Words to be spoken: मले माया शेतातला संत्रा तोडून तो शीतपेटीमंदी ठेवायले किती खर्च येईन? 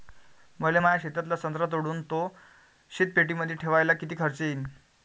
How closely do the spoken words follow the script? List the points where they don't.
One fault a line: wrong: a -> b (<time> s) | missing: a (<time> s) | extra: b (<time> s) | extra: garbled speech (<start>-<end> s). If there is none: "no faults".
no faults